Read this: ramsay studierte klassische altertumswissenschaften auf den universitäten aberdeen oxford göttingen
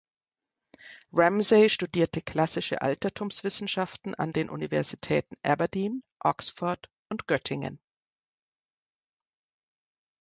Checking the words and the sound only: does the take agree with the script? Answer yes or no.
no